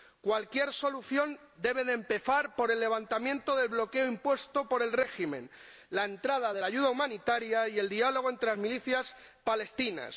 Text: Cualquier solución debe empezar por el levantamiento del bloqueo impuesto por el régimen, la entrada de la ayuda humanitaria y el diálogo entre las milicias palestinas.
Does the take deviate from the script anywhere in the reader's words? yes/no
no